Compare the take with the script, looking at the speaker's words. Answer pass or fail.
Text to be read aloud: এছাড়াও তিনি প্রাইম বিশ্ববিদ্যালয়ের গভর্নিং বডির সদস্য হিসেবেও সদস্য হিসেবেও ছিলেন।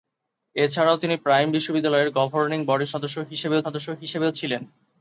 pass